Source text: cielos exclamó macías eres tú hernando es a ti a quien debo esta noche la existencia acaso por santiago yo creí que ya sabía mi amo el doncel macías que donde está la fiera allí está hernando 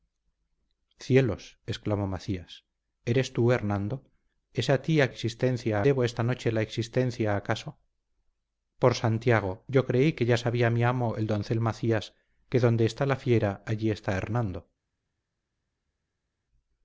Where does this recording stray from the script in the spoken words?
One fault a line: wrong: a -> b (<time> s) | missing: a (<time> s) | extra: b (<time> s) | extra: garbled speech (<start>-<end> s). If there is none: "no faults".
wrong: quien -> existencia (5.1 s)